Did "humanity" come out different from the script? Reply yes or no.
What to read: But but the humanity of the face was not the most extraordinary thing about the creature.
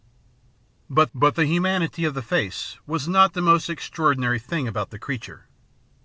no